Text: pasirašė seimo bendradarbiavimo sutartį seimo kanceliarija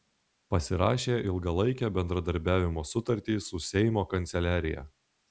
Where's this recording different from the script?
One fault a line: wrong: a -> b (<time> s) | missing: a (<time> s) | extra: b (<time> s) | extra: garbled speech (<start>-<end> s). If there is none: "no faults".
wrong: seimo -> ilgalaikę (1.3 s)
extra: su (3.5 s)